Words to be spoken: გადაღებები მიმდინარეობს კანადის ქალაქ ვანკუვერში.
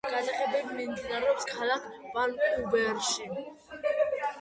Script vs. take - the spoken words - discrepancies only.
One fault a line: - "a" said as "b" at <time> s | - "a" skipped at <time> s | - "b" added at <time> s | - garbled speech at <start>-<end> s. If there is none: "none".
- "კანადის" skipped at 1.5 s